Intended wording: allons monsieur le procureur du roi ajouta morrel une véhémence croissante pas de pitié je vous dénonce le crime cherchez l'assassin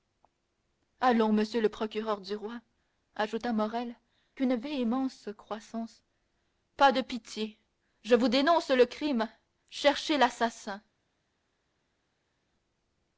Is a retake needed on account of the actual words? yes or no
no